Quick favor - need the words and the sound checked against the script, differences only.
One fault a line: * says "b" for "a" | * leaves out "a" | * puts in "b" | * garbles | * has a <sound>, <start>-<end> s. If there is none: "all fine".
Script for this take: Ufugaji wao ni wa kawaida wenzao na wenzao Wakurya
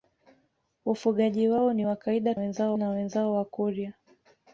all fine